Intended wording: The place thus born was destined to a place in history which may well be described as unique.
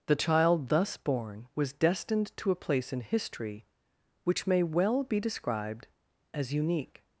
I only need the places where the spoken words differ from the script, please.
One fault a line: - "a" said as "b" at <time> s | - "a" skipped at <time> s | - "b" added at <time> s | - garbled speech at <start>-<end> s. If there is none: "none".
- "place" said as "child" at 0.1 s